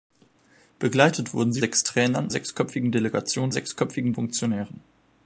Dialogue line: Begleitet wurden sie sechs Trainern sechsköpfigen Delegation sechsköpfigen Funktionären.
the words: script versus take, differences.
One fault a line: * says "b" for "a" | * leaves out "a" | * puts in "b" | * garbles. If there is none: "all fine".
all fine